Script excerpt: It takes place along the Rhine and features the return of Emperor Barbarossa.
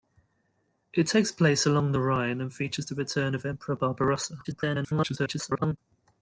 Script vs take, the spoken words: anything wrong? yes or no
yes